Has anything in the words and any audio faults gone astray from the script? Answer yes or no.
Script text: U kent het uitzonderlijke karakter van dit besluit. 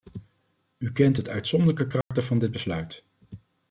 yes